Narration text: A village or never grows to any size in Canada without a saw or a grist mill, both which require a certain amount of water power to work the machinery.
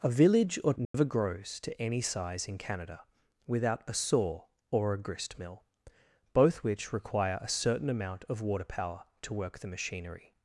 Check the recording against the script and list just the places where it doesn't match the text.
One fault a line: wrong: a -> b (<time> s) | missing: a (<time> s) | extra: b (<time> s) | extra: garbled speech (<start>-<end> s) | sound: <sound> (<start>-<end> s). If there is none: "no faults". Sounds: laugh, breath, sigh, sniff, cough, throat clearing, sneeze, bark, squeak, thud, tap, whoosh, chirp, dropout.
sound: dropout (0.8-0.9 s)